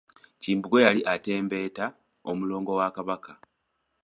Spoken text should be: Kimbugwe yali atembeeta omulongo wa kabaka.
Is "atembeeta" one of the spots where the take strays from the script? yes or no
no